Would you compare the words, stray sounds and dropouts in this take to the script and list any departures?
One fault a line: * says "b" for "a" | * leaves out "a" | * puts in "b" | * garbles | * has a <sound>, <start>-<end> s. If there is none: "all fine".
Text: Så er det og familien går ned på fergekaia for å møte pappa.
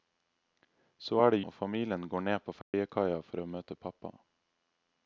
* has a dropout, 2.6-2.7 s